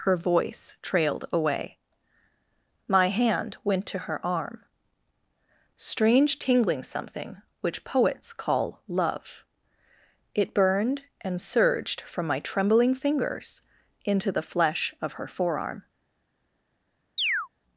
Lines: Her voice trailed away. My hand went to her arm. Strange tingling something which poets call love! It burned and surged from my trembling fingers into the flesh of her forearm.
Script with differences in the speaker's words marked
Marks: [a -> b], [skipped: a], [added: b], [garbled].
Her voice trailed away. My hand went to her arm. Strange tingling something which poets call love! It burned and surged from my trembling fingers into the flesh of her forearm.